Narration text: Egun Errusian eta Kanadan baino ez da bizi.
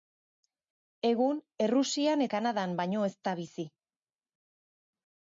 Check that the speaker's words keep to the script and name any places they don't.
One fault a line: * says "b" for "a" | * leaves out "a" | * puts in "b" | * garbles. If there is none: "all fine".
* leaves out "eta"